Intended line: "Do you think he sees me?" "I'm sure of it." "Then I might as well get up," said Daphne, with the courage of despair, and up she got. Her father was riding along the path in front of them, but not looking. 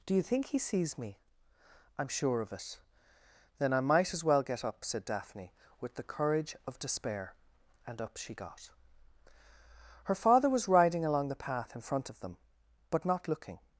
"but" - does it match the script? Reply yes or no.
yes